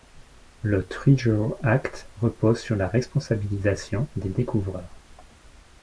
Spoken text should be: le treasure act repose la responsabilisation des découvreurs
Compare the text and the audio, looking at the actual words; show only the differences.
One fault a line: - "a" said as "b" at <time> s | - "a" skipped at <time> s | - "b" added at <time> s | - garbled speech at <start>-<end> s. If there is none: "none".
- "sur" added at 2.6 s